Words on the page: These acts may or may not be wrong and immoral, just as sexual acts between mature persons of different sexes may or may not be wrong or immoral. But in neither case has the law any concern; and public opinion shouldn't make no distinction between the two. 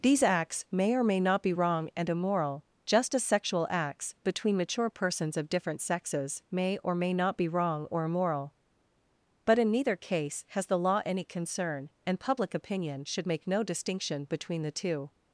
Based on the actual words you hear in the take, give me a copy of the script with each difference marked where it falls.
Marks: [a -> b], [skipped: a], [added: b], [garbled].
These acts may or may not be wrong and immoral, just as sexual acts between mature persons of different sexes may or may not be wrong or immoral. But in neither case has the law any concern; and public opinion [shouldn't -> should] make no distinction between the two.